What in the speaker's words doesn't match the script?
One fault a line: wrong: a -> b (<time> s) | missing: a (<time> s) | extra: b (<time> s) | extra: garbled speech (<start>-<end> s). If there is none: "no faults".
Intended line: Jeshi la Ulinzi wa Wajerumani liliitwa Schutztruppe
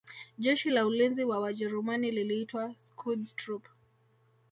no faults